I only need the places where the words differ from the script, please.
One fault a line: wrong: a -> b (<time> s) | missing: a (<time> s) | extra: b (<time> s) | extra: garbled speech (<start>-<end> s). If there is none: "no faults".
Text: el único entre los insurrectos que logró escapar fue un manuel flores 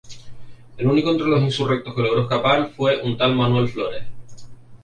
extra: tal (3.2 s)